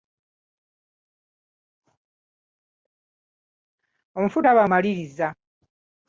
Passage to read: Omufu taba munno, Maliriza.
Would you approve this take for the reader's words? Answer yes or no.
no